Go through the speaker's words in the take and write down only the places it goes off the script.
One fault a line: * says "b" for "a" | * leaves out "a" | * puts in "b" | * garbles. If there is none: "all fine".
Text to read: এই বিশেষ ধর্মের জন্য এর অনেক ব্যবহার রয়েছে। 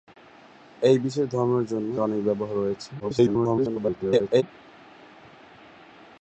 * leaves out "এর"
* garbles